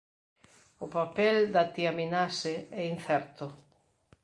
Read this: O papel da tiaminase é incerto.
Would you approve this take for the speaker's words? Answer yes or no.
yes